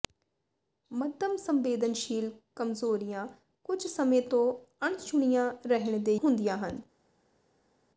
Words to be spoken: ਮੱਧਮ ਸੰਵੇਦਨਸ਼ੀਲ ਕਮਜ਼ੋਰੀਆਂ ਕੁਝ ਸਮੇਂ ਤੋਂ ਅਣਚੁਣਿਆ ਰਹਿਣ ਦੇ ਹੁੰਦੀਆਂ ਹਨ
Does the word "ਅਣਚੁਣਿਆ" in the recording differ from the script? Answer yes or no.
no